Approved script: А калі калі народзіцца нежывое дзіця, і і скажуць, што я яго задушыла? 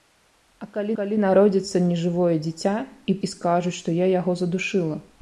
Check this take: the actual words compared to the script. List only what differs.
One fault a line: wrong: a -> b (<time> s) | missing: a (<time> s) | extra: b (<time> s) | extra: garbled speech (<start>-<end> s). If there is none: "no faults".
no faults